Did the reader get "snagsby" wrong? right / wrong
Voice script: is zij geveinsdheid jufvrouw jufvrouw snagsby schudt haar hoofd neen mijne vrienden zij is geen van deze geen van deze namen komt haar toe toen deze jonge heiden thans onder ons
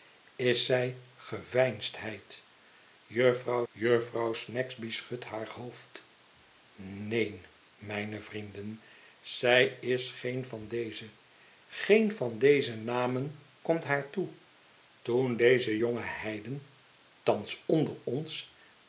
right